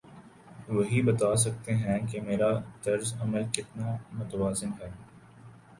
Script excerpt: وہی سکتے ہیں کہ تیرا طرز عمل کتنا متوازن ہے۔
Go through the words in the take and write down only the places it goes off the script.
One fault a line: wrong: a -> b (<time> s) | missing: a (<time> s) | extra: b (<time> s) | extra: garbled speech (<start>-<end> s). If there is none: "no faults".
extra: بتا (1.0 s)
wrong: تیرا -> میرا (2.2 s)